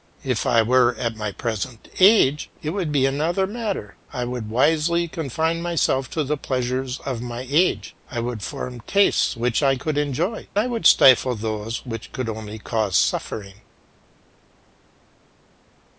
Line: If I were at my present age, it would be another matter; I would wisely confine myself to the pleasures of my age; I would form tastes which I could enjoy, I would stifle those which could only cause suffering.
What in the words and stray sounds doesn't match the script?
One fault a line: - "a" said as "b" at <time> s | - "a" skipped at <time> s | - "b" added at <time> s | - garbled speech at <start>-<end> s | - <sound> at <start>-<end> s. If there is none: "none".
none